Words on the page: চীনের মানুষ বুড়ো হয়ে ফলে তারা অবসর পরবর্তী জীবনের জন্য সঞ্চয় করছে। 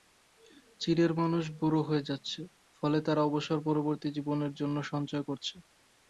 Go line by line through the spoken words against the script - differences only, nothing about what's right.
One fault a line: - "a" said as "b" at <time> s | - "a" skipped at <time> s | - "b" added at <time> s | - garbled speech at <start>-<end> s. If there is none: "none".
- "যাচ্ছে" added at 2.1 s